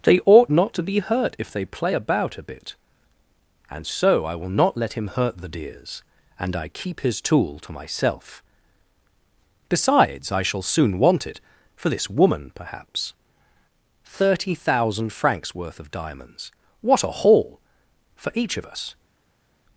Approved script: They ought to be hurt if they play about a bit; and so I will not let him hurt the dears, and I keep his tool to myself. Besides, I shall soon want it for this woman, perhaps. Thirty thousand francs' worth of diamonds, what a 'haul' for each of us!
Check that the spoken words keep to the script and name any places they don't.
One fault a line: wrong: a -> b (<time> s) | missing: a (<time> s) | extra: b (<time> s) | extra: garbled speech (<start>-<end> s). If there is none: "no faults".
extra: not (0.5 s)